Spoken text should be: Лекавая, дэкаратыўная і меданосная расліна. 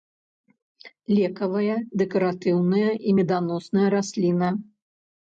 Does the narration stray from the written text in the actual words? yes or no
no